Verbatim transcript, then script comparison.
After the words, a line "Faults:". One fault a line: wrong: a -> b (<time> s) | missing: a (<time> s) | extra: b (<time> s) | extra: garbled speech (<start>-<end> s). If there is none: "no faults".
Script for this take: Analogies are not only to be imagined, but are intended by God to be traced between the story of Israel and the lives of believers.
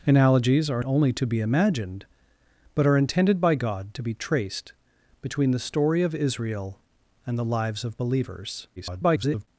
Analogies are only to be imagined, but are intended by God to be traced between the story of Israel and the lives of believers. [garbled]
Faults:
missing: not (0.8 s)
extra: garbled speech (8.8-9.5 s)